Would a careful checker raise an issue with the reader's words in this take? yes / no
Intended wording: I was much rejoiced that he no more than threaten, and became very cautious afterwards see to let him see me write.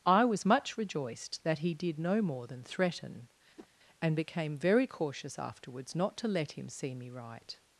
yes